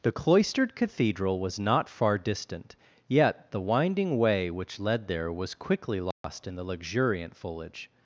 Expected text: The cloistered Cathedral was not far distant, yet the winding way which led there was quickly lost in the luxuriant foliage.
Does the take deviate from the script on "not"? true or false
false